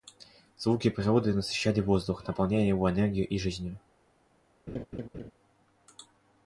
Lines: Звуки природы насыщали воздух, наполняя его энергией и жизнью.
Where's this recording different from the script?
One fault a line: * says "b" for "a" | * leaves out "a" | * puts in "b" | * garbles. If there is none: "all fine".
all fine